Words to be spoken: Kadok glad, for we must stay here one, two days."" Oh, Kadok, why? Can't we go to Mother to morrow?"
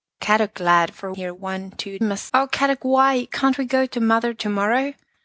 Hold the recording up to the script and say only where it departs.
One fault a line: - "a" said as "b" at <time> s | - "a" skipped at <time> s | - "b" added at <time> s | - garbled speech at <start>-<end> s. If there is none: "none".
- "we must stay" skipped at 1.1 s
- "days" said as "must" at 2.0 s